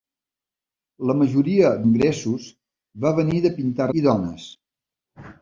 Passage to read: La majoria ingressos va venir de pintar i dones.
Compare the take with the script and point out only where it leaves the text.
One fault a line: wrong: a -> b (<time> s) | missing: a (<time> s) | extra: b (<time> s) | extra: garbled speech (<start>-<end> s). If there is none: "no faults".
no faults